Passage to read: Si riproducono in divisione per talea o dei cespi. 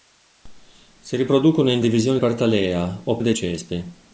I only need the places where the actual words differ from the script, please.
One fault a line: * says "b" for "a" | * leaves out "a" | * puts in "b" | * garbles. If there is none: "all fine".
all fine